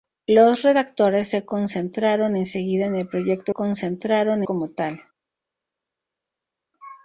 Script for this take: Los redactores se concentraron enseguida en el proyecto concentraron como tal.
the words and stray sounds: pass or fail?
pass